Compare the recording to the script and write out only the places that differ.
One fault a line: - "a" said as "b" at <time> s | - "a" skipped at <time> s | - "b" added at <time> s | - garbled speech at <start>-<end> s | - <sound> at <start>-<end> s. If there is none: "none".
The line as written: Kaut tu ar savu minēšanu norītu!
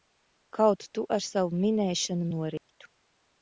- dropout at 2.6-2.7 s